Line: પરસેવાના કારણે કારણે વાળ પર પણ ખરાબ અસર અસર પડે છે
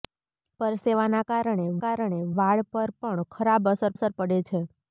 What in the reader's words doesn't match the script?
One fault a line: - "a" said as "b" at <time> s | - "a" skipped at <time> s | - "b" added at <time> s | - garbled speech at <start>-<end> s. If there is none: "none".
none